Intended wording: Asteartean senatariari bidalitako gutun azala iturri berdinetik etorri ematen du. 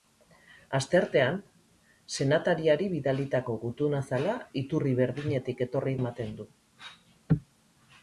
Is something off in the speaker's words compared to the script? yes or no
no